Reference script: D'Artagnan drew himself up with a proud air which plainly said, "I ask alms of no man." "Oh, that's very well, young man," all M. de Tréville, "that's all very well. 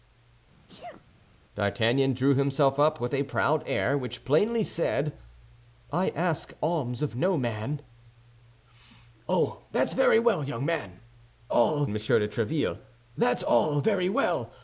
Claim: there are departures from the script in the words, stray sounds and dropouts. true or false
true